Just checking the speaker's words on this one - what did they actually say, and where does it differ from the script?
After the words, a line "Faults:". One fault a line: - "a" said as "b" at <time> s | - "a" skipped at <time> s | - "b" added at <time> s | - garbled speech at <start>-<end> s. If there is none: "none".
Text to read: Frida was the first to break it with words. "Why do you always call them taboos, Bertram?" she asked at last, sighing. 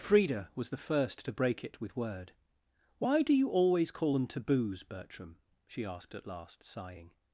Frida was the first to break it with word. "Why do you always call them taboos, Bertram?" she asked at last, sighing.
Faults:
- "words" said as "word" at 1.9 s